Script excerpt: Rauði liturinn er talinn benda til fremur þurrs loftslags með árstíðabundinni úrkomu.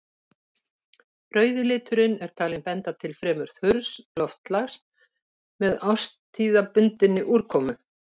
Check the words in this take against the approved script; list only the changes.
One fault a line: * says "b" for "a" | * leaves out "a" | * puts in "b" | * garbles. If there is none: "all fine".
all fine